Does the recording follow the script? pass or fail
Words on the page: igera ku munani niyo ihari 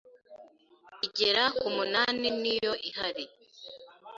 pass